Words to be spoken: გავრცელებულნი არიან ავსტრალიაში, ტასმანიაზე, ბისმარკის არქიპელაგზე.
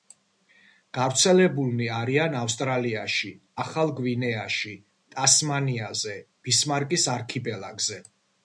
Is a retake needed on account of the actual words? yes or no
yes